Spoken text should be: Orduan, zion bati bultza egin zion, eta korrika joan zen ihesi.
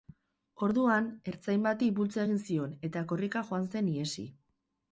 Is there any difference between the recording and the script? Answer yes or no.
yes